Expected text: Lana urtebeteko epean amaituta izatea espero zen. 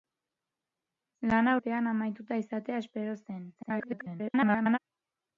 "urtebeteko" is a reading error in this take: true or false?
true